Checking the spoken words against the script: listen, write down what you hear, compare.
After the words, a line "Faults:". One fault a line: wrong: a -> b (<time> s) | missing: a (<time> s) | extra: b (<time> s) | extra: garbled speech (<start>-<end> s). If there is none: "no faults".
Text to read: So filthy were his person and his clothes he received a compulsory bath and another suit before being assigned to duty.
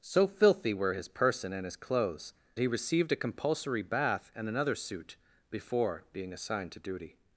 So filthy were his person and his clothes he received a compulsory bath and another suit before being assigned to duty.
Faults:
no faults